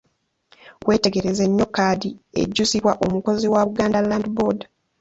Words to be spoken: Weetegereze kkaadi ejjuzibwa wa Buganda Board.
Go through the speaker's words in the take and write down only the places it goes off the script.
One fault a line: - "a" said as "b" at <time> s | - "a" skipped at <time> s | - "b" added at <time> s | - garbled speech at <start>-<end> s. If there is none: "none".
- "nnyo" added at 1.5 s
- "omukozi" added at 3.0 s
- "Land" added at 4.1 s